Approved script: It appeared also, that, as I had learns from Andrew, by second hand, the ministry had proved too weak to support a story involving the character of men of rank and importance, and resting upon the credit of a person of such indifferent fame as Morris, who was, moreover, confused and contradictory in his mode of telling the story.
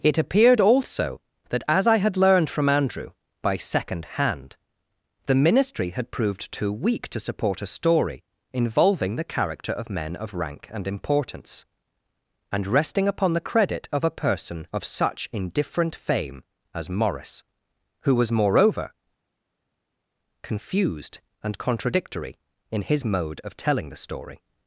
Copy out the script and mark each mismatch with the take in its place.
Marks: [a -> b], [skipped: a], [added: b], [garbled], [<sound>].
It appeared also, that, as I had [learns -> learned] from Andrew, by second hand, the ministry had proved too weak to support a story involving the character of men of rank and importance, and resting upon the credit of a person of such indifferent fame as Morris, who was, moreover, confused and contradictory in his mode of telling the story.